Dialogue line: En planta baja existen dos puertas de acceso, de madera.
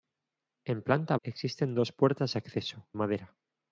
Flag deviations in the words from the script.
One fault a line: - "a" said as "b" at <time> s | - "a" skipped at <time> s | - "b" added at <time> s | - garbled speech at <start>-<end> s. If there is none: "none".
- "baja" skipped at 1.1 s
- "de" skipped at 2.9 s